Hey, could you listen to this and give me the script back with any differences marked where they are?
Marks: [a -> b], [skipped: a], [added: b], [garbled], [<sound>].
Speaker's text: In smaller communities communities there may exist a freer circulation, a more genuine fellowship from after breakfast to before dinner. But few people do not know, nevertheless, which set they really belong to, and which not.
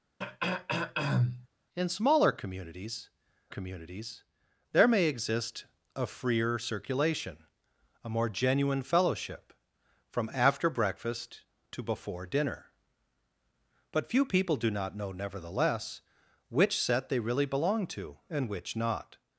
[throat clearing] In smaller communities communities there may exist a freer circulation, a more genuine fellowship from after breakfast to before dinner. But few people do not know, nevertheless, which set they really belong to, and which not.